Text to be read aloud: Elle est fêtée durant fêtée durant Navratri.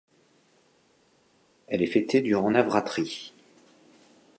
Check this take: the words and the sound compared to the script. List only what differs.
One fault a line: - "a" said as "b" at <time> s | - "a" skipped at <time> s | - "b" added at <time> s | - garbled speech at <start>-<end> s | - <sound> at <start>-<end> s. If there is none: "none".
- "fêtée durant" skipped at 2.5 s